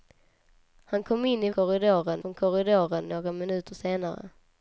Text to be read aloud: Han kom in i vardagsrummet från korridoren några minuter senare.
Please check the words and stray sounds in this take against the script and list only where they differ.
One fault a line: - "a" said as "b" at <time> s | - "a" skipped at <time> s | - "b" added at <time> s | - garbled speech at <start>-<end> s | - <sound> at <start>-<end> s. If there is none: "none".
- "vardagsrummet" said as "korridoren" at 1.5 s